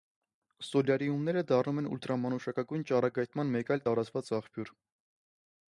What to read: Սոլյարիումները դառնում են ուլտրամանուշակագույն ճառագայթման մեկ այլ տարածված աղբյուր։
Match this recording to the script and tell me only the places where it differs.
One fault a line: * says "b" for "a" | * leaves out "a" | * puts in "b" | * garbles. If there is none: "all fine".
all fine